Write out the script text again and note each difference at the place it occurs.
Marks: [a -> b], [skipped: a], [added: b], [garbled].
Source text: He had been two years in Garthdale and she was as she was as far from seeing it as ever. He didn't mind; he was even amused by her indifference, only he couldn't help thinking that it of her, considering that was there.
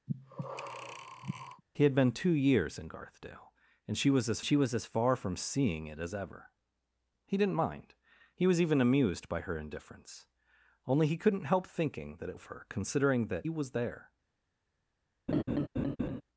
He had been two years in Garthdale and she was as she was as far from seeing it as ever. He didn't mind; he was even amused by her indifference, only he couldn't help thinking that it of her, considering that was there.